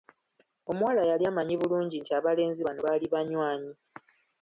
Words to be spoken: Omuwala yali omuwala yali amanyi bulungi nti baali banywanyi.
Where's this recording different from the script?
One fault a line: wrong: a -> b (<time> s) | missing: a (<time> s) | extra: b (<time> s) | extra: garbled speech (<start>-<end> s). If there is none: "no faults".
missing: omuwala yali (1.2 s)
extra: abalenzi bano (2.2 s)